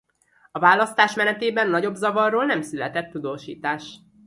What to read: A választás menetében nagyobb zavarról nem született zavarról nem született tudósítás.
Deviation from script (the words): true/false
true